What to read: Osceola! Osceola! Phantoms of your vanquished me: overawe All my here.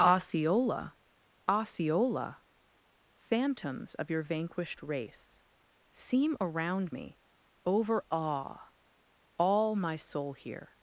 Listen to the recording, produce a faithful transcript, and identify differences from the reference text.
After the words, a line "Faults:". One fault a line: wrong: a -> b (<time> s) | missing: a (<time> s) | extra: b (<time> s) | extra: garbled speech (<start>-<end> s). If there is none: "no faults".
Osceola! Osceola! Phantoms of your vanquished race Seem around me: overawe All my soul here.
Faults:
extra: race Seem around (4.8 s)
extra: soul (10.0 s)